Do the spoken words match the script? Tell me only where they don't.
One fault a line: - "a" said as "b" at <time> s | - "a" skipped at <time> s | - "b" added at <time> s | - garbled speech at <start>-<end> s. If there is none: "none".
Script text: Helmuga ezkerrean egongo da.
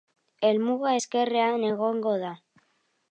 none